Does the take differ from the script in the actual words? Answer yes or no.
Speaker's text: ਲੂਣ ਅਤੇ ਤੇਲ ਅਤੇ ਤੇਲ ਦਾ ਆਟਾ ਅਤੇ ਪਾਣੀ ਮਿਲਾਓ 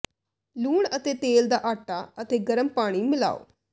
yes